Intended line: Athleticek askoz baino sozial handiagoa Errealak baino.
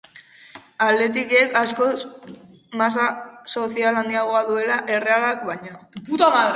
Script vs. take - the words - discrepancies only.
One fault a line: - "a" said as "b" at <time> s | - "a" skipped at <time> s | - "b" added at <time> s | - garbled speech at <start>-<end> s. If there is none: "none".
- "baino" said as "masa" at 2.8 s
- "duela" added at 4.5 s